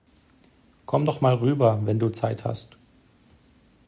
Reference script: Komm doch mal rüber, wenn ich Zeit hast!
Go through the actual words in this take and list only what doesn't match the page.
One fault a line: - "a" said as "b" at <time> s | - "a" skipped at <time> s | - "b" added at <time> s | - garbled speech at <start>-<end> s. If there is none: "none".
- "ich" said as "du" at 2.0 s